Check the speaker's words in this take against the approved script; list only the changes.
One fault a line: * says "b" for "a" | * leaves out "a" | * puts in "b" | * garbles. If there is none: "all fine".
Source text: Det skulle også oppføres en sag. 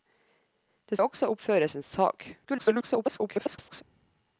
* leaves out "skulle"
* garbles